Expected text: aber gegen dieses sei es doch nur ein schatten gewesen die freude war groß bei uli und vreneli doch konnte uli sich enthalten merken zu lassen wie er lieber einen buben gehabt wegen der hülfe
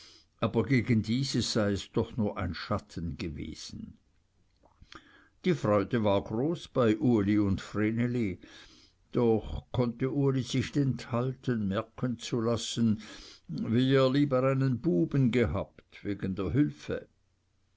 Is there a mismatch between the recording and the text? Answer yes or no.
no